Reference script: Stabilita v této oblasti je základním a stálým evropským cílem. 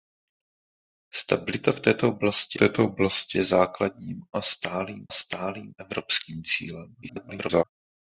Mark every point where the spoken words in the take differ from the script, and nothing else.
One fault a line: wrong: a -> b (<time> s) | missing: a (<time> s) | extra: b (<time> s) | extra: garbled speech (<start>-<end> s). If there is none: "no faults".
extra: této oblasti (2.5 s)
extra: stálým (5.1 s)
extra: garbled speech (7.0-7.6 s)